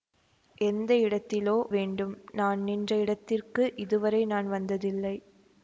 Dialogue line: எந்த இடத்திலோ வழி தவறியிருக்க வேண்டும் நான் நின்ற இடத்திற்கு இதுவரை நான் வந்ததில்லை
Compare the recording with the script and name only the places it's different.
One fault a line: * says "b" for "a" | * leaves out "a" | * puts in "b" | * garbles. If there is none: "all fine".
* leaves out "வழி தவறியிருக்க"